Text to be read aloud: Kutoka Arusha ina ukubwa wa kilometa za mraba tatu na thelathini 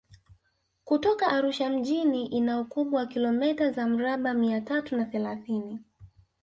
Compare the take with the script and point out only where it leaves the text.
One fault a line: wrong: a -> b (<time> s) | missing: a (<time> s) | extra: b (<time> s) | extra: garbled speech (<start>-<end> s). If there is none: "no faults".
extra: mjini (1.7 s)
extra: mia (4.3 s)